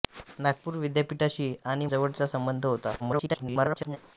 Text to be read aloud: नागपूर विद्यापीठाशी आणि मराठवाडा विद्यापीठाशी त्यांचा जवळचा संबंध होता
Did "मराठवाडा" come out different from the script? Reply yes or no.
yes